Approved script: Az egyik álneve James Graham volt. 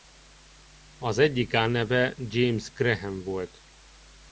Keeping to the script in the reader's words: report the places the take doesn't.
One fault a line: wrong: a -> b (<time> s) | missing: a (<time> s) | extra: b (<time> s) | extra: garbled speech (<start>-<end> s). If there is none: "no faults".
no faults